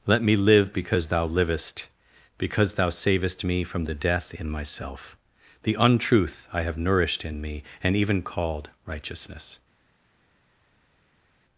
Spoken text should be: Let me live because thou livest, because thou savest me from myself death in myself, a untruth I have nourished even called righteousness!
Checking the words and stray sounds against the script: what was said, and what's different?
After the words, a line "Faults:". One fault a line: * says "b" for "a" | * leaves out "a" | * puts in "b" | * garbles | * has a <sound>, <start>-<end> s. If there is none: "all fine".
Let me live because thou livest, because thou savest me from the death in myself, the untruth I have nourished in me, and even called righteousness!
Faults:
* says "the" for "myself"
* says "the" for "a"
* puts in "in me and"